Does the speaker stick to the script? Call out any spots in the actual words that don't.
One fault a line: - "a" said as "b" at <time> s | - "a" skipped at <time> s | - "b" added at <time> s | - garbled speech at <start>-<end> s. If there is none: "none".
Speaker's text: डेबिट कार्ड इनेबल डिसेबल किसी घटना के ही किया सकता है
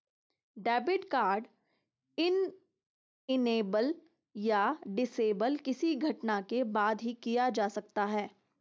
- "या" added at 4.3 s
- "बाद" added at 6.7 s
- "जा" added at 7.5 s